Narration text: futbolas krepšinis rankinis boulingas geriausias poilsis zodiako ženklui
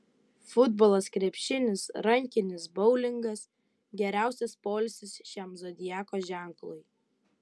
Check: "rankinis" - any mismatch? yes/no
no